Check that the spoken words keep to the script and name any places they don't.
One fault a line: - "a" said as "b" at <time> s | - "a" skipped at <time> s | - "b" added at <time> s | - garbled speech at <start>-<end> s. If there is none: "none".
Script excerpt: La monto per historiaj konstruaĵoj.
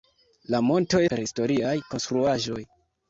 none